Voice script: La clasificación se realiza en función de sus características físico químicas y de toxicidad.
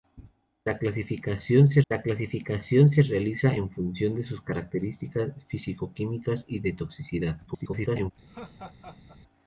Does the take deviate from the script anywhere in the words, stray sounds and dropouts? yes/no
yes